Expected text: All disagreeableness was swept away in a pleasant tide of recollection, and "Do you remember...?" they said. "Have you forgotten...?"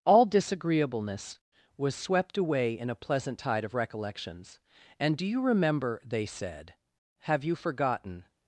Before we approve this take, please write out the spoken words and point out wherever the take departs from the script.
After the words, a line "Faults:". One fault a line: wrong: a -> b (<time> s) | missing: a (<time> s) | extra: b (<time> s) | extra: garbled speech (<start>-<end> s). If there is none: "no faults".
All disagreeableness was swept away in a pleasant tide of recollections, and "Do you remember...?" they said. "Have you forgotten...?"
Faults:
wrong: recollection -> recollections (3.7 s)